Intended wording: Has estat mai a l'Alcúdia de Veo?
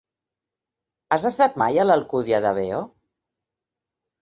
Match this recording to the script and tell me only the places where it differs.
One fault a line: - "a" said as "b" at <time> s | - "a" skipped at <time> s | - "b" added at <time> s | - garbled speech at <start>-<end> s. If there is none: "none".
none